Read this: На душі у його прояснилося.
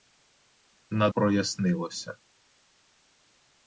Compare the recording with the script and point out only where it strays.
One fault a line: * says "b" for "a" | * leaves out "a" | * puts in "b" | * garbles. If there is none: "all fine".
* leaves out "душі у його"